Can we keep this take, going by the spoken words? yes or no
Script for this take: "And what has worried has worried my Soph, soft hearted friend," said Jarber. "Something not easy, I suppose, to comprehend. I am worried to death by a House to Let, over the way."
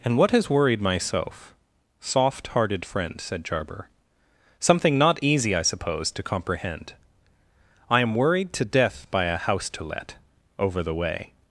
no